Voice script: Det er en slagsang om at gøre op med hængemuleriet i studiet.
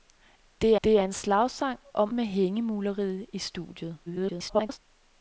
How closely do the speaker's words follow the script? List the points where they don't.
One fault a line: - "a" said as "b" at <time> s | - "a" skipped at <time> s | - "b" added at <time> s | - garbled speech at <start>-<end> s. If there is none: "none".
- "det" added at 0.8 s
- "at gøre op" skipped at 2.1 s
- garbled speech at 4.1-4.8 s